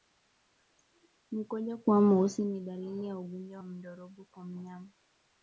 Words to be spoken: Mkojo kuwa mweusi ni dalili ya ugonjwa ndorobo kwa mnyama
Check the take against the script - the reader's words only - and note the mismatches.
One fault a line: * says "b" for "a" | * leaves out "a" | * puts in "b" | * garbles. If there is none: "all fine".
all fine